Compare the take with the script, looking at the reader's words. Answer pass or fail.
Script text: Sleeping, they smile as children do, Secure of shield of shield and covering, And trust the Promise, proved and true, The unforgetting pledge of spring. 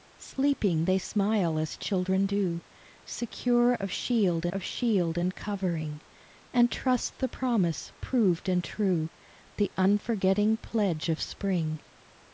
pass